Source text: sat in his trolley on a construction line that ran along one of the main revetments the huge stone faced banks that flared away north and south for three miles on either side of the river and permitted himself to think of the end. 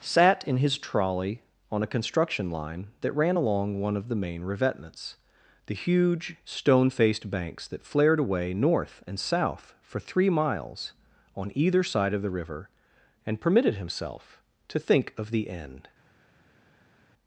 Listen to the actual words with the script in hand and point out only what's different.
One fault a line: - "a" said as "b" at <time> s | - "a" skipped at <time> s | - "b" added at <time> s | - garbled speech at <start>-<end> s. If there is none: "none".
none